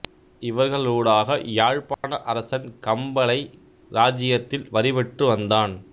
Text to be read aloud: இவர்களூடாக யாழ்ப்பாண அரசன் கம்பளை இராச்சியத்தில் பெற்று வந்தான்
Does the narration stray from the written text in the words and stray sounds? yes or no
yes